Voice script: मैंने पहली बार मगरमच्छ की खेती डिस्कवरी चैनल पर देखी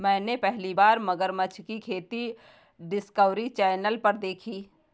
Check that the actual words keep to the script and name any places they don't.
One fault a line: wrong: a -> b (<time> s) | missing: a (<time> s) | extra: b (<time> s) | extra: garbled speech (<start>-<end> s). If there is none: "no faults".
no faults